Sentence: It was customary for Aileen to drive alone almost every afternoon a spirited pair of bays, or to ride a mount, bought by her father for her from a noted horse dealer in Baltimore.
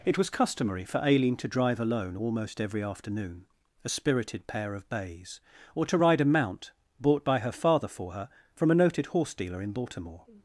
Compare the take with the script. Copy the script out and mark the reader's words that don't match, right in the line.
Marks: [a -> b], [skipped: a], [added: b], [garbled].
It was customary for Aileen to drive alone almost every afternoon a spirited pair of bays, or to ride a mount, bought by her father for her from a noted horse dealer in Baltimore.